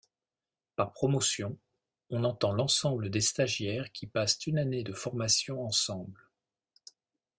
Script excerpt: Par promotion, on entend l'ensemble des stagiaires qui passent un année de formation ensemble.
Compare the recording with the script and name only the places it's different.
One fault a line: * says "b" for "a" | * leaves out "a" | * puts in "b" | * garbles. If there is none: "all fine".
* says "une" for "un"